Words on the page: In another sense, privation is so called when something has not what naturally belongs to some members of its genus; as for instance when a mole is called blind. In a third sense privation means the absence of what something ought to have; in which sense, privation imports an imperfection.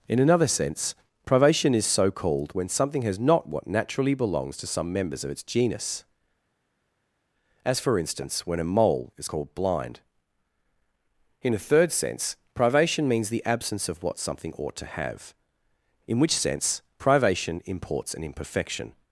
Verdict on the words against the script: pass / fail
pass